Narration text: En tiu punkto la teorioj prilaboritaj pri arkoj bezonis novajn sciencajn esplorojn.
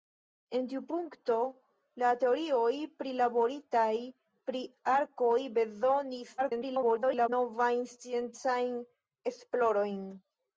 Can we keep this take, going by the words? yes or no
no